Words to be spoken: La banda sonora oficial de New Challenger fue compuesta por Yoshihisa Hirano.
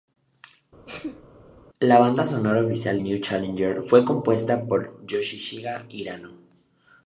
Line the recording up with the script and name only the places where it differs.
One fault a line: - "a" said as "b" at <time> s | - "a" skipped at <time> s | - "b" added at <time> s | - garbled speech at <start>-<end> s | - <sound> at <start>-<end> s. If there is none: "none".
- sneeze at 0.9-1.2 s
- "de" skipped at 3.0 s